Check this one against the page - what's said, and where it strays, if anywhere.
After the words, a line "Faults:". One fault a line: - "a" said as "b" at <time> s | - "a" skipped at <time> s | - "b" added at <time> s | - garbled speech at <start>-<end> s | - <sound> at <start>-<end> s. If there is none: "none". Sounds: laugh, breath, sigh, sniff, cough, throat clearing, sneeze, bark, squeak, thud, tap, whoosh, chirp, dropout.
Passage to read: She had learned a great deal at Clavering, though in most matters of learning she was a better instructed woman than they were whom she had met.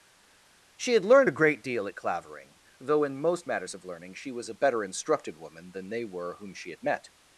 She had learned a great deal at Clavering, though in most matters of learning she was a better instructed woman than they were whom she had met.
Faults:
none